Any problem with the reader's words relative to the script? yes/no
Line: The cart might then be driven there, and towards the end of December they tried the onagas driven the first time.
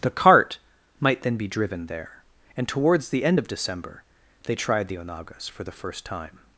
yes